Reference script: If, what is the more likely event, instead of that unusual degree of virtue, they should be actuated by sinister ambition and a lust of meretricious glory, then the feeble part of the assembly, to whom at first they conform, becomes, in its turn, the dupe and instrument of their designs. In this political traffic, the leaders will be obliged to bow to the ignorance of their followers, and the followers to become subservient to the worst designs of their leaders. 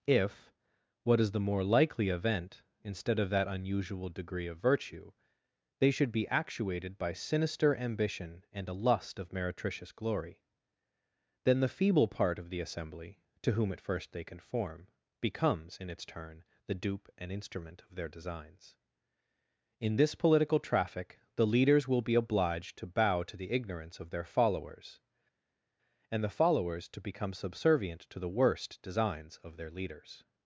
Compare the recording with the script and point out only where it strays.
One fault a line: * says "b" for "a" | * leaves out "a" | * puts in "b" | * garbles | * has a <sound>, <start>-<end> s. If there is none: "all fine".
all fine